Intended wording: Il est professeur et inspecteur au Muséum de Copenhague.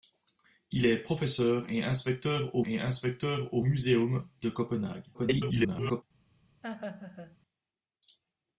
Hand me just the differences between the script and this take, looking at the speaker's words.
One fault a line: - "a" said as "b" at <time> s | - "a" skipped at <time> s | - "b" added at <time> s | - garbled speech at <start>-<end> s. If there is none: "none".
- "et inspecteur au" added at 2.7 s
- garbled speech at 5.1-6.0 s